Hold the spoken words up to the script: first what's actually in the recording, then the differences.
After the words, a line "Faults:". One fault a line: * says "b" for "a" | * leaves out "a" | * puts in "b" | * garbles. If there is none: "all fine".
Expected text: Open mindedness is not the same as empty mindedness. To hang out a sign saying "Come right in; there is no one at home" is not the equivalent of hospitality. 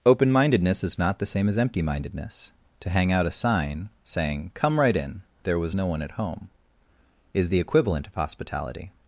Open mindedness is not the same as empty mindedness. To hang out a sign saying "Come right in; there was no one at home" is the equivalent of hospitality.
Faults:
* says "was" for "is"
* leaves out "not"